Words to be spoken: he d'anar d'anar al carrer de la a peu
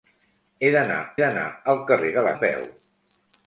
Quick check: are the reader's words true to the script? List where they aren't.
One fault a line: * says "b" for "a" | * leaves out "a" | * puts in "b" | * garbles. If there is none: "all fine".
all fine